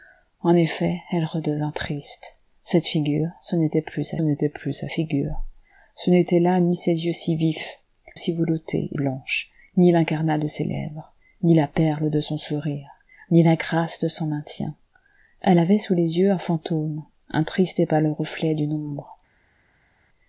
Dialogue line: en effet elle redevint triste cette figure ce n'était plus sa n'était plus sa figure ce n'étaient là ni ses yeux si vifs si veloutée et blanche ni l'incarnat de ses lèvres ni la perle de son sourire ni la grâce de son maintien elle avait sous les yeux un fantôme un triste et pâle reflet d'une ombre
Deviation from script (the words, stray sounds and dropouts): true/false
false